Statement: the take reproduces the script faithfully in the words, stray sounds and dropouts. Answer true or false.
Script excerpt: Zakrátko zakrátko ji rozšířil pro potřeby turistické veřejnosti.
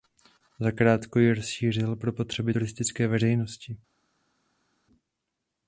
false